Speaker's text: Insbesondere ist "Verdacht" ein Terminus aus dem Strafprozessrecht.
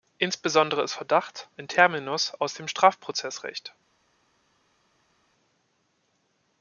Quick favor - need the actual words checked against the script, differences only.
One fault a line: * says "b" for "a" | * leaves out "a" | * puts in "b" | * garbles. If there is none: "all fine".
all fine